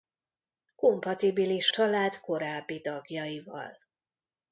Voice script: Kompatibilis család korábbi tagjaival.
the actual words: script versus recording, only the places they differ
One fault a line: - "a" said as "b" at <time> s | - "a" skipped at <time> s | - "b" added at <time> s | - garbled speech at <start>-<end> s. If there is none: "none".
none